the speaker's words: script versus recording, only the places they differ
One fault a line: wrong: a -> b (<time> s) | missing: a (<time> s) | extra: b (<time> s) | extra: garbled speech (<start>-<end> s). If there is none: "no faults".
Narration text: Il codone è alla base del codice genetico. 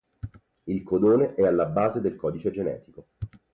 no faults